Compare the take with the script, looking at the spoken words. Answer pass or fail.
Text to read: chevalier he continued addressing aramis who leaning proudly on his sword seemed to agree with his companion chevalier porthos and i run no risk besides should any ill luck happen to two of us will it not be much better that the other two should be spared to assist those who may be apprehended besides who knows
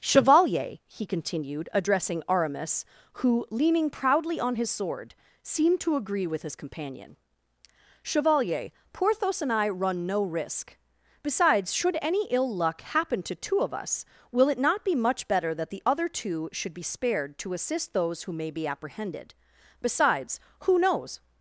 pass